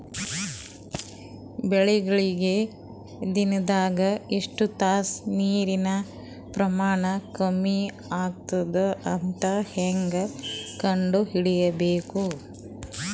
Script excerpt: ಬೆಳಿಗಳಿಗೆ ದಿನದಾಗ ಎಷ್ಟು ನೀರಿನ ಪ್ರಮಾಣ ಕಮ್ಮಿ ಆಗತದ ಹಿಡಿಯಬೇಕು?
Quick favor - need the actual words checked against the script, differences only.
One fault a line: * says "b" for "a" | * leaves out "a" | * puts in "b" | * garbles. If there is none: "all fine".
* puts in "ತಾಸ"
* puts in "ಅಂತ ಹೇಂಗ ಕಂಡ"